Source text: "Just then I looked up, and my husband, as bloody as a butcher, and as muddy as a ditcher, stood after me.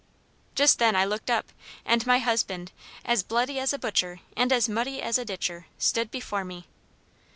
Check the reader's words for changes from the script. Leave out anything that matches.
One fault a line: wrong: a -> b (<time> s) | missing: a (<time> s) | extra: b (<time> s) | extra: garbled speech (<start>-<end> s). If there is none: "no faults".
wrong: after -> before (6.1 s)